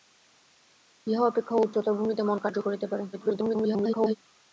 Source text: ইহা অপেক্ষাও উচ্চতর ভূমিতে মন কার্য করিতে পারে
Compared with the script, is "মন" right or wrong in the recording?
right